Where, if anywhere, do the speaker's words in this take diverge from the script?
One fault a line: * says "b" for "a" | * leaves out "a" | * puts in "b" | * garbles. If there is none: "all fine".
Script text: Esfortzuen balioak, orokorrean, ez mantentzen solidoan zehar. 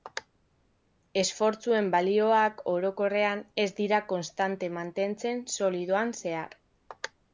* puts in "dira konstante"